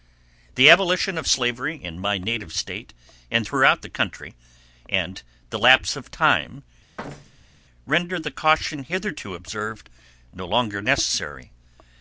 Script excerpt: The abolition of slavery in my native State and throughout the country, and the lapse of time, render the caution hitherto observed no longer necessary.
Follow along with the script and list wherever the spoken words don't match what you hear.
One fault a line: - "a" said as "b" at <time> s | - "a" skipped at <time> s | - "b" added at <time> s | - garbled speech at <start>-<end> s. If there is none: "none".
none